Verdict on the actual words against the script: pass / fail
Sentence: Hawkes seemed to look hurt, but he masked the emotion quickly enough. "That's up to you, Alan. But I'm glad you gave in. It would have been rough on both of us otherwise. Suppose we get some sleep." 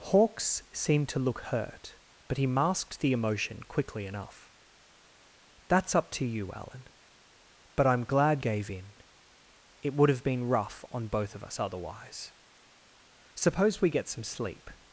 fail